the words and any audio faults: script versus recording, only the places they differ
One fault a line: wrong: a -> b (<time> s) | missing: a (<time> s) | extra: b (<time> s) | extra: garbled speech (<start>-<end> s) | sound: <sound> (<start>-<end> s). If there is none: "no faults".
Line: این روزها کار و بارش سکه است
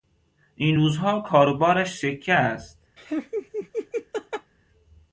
sound: laugh (3.0-4.5 s)